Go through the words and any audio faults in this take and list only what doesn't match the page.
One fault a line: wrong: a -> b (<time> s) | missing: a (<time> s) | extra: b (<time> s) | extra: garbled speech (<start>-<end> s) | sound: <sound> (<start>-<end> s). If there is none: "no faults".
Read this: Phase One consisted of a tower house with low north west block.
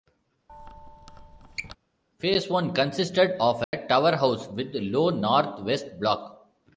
sound: squeak (0.5-1.8 s)
sound: dropout (3.6-3.7 s)